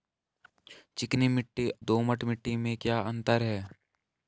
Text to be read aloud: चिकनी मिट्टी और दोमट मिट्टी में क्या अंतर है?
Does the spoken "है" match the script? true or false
true